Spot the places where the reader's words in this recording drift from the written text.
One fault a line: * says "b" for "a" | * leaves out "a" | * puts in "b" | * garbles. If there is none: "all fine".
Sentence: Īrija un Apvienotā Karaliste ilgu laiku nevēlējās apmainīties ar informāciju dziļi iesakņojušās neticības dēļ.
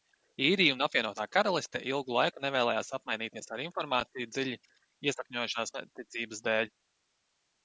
all fine